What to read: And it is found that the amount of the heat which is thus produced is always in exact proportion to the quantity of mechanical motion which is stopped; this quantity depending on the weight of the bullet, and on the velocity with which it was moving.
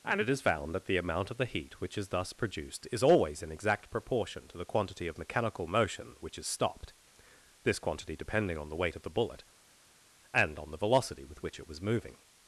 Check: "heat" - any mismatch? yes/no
no